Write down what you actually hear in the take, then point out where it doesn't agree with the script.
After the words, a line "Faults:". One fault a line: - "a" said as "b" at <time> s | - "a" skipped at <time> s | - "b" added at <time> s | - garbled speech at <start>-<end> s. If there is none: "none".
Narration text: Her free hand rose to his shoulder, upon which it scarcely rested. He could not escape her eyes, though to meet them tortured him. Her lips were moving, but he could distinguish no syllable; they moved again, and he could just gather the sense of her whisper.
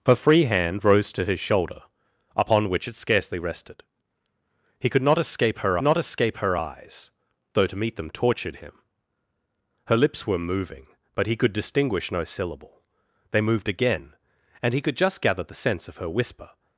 Her free hand rose to his shoulder, upon which it scarcely rested. He could not escape her not escape her eyes, though to meet them tortured him. Her lips were moving, but he could distinguish no syllable; they moved again, and he could just gather the sense of her whisper.
Faults:
- "not escape her" added at 5.8 s